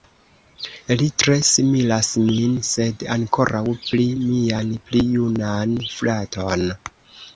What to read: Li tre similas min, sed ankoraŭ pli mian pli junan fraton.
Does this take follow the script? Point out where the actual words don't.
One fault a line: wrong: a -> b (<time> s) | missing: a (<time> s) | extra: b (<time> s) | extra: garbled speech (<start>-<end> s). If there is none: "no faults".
no faults